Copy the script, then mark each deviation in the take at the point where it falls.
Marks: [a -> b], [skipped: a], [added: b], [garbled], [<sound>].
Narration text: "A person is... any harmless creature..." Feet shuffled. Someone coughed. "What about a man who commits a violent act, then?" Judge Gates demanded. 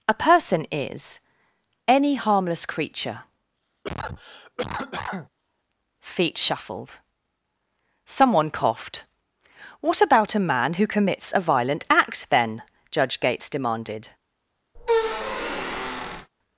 "A person is... any harmless creature..." [cough] Feet shuffled. Someone coughed. "What about a man who commits a violent act, then?" Judge Gates demanded. [squeak]